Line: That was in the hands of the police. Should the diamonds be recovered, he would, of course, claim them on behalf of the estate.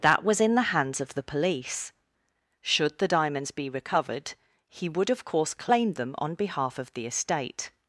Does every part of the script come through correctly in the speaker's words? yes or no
yes